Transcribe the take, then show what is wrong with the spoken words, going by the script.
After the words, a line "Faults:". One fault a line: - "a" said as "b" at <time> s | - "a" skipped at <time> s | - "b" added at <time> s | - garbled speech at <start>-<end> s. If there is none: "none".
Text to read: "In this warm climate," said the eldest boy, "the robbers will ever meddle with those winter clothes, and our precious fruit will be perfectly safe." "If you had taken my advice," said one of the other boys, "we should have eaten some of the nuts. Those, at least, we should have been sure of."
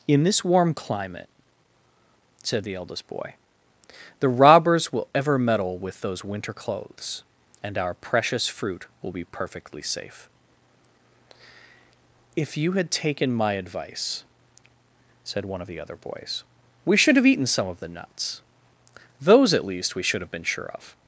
"In this warm climate," said the eldest boy, "the robbers will ever meddle with those winter clothes, and our precious fruit will be perfectly safe." "If you had taken my advice," said one of the other boys, "we should have eaten some of the nuts. Those, at least, we should have been sure of."
Faults:
none